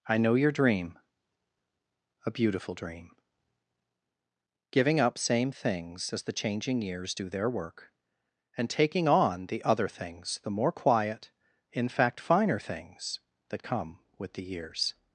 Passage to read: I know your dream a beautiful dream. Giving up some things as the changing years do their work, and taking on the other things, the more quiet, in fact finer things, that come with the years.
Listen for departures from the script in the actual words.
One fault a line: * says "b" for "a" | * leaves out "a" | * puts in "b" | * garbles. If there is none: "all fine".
* says "same" for "some"